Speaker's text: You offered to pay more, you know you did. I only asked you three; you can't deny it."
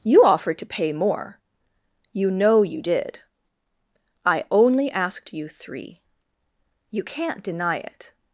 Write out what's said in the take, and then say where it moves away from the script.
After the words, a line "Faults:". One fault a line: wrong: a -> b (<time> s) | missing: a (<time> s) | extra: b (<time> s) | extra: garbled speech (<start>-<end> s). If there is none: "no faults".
You offered to pay more, you know you did. I only asked you three; you can't deny it."
Faults:
no faults